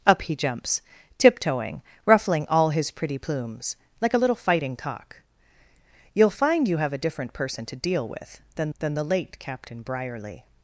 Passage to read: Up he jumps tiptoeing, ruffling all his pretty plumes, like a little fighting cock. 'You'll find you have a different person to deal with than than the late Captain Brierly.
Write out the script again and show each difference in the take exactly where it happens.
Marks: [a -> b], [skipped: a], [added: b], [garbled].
Up he jumps tiptoeing, ruffling all his pretty plumes, like a little fighting cock. 'You'll find you have a different person to deal with than than the late Captain Brierly.